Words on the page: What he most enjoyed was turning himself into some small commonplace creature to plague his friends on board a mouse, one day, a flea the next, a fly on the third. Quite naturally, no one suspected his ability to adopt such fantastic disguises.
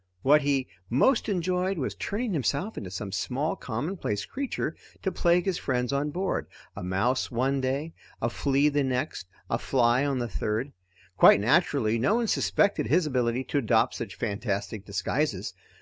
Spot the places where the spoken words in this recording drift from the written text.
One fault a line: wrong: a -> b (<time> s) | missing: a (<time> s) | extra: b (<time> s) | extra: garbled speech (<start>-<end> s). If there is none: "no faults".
no faults